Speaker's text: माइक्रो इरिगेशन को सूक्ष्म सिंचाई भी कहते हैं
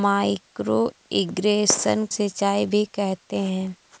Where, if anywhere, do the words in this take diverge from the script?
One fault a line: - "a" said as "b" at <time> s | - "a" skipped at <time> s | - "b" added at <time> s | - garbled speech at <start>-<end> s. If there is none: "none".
- "को सूक्ष्म" skipped at 2.1 s